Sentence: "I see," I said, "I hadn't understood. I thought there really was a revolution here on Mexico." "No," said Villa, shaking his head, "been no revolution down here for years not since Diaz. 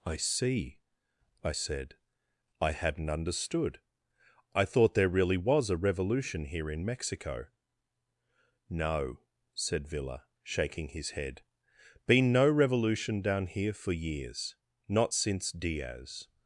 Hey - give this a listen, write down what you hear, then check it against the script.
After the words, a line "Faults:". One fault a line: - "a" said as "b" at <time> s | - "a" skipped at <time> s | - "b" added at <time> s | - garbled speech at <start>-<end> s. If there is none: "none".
"I see," I said, "I hadn't understood. I thought there really was a revolution here in Mexico." "No," said Villa, shaking his head, "been no revolution down here for years not since Diaz.
Faults:
- "on" said as "in" at 6.7 s